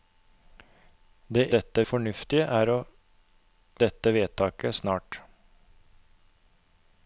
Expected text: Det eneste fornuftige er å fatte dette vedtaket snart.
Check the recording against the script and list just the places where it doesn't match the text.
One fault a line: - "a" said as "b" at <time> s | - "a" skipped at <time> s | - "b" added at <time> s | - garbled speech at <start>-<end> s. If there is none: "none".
- "eneste" said as "dette" at 1.6 s
- "fatte" skipped at 2.8 s